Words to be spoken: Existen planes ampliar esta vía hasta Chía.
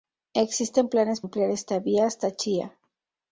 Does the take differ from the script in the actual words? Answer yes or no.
no